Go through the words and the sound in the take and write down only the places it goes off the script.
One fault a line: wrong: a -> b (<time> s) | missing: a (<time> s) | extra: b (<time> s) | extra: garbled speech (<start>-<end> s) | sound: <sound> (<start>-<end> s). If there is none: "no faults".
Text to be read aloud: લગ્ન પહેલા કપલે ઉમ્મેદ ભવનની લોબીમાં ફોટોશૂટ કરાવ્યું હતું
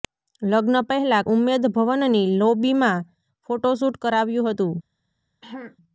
missing: કપલે (1.3 s)
sound: throat clearing (5.4-5.8 s)